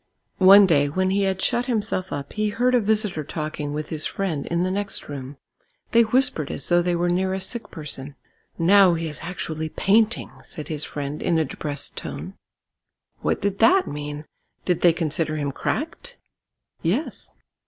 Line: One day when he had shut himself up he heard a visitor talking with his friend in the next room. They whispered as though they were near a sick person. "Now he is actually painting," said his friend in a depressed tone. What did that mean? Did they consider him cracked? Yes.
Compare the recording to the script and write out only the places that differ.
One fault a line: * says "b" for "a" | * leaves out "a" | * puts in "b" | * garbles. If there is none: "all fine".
all fine